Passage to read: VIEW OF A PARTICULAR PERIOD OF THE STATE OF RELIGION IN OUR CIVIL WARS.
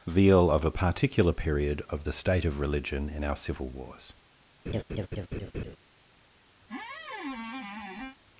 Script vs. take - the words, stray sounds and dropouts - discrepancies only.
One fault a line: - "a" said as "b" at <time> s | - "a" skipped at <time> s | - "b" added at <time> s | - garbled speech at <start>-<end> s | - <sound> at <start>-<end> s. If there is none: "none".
- "VIEW" said as "Veal" at 0.1 s
- laugh at 4.7-5.8 s
- squeak at 6.6-8.2 s